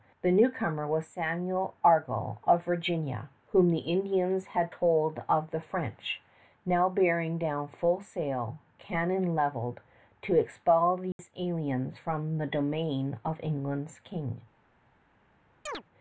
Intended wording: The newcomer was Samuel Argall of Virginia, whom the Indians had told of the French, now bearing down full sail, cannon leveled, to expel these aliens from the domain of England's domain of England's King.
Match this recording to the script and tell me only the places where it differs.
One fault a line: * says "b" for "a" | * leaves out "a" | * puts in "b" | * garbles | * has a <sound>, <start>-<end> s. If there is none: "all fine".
* has a dropout, 11.1-11.2 s
* leaves out "domain of England's"
* has a chirp, 15.7-15.8 s